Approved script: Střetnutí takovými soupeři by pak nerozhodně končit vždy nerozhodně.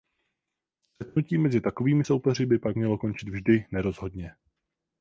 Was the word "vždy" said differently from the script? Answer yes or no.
no